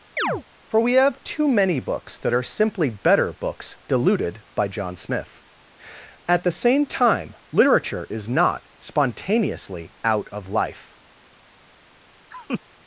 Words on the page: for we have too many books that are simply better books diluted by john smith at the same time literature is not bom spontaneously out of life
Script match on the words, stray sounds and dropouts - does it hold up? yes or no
no